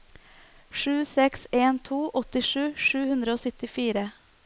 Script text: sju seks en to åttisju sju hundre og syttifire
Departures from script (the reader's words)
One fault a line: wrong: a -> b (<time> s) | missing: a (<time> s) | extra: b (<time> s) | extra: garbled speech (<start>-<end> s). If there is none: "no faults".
no faults